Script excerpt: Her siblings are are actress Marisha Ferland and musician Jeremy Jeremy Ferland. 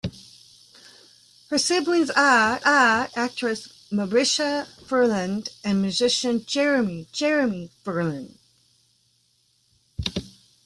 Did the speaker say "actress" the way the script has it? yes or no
yes